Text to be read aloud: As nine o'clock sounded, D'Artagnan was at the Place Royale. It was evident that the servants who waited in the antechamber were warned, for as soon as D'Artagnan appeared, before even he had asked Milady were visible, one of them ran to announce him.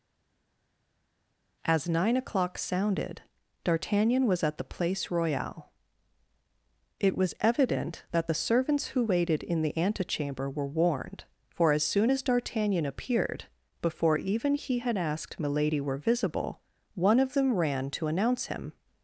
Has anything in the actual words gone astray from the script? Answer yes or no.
no